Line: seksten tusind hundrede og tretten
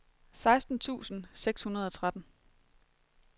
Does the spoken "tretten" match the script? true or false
true